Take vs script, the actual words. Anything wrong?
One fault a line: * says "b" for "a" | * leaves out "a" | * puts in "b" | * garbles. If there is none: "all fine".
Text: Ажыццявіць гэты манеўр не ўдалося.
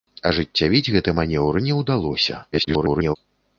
* garbles